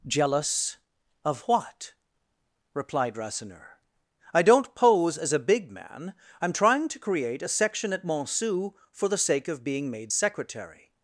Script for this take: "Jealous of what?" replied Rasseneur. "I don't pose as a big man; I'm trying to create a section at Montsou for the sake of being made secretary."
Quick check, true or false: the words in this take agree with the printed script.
true